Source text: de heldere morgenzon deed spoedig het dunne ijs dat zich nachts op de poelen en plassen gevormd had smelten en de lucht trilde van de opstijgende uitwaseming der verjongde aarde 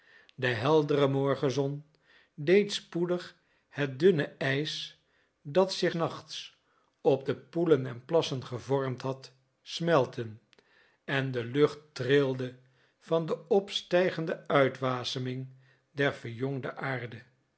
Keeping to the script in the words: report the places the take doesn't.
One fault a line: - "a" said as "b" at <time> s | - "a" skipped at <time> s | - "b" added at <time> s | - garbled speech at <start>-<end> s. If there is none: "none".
none